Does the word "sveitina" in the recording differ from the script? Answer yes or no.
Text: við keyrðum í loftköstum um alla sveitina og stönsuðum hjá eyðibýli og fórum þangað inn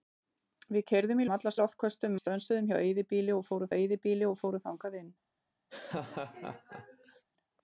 yes